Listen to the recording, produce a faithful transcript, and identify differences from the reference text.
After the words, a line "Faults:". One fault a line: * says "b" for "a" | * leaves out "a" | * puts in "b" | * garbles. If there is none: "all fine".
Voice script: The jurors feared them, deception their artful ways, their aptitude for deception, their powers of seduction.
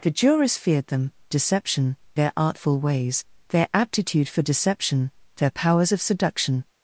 The jurors feared them, deception their artful ways, their aptitude for deception, their powers of seduction.
Faults:
all fine